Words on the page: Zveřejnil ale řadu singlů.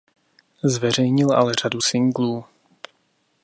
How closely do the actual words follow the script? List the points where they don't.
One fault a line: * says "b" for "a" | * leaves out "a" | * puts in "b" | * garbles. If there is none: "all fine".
all fine